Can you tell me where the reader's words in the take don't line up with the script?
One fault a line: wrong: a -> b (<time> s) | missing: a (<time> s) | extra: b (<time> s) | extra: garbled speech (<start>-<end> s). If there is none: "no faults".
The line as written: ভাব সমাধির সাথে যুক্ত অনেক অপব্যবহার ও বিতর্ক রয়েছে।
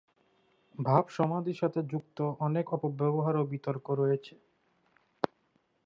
no faults